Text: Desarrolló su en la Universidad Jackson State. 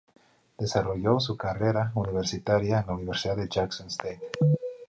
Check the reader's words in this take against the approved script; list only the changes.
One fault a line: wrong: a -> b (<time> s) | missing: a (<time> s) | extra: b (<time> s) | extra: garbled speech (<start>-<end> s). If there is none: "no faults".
extra: carrera universitaria (1.4 s)
extra: de (3.3 s)